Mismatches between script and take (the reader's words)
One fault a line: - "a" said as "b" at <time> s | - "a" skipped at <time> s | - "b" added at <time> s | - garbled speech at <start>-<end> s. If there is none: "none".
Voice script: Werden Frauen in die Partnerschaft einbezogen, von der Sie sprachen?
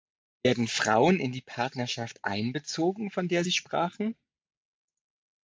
none